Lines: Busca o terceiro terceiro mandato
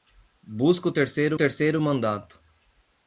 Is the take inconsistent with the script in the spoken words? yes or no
no